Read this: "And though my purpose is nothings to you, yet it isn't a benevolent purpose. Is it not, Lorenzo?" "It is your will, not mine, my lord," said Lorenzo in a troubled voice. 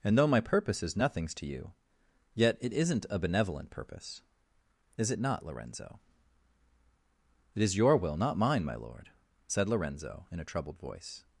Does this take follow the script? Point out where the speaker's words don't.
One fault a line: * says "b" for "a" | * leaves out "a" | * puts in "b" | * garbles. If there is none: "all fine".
all fine